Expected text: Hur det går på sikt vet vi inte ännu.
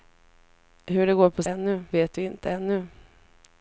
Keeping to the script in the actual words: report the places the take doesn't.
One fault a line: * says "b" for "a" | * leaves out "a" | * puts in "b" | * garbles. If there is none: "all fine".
* says "ännu" for "sikt"